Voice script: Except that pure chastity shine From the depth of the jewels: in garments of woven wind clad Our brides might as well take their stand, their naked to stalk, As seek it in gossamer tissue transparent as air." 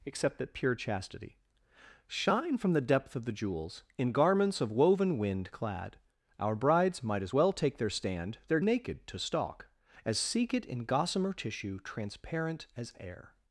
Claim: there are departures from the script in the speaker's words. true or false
false